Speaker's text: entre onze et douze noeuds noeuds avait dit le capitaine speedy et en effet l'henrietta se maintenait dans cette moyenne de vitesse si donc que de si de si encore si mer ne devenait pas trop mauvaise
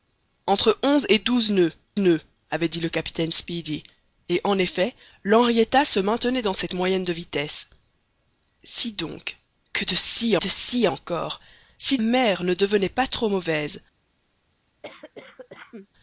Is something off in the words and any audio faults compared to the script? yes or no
yes